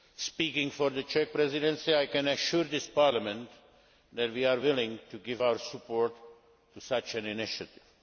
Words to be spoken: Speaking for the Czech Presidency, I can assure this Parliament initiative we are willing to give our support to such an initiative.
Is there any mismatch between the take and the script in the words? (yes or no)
yes